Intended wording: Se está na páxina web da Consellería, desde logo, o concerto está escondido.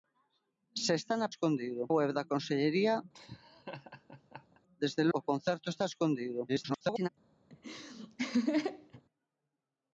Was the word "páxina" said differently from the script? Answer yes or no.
yes